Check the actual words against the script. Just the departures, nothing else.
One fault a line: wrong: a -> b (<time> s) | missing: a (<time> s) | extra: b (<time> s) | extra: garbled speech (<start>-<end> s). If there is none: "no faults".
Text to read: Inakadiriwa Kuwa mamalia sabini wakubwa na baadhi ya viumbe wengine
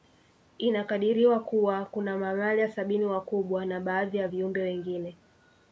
extra: kuna (1.9 s)